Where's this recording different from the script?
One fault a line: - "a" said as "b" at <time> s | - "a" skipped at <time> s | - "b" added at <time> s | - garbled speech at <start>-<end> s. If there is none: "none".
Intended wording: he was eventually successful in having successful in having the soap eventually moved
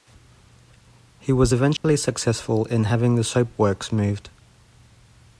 - "successful in having" skipped at 3.2 s
- "eventually" said as "works" at 3.6 s